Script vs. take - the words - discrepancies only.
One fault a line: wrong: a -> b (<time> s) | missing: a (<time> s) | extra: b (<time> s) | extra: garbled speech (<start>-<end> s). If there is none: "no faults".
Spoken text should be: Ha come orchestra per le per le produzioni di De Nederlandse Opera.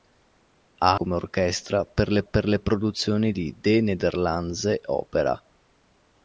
no faults